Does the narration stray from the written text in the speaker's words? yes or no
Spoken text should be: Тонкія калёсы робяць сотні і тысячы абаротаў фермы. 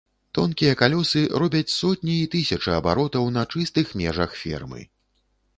yes